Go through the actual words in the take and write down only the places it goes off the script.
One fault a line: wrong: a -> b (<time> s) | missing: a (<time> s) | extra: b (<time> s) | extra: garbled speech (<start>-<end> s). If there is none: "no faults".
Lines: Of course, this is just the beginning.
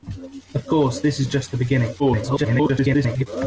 extra: garbled speech (2.0-3.3 s)